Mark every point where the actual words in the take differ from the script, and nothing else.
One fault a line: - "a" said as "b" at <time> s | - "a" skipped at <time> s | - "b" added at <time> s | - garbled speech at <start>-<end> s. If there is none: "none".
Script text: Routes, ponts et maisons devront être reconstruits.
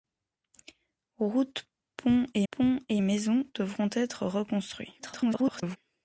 - "ponts et" added at 2.5 s
- garbled speech at 5.0-5.8 s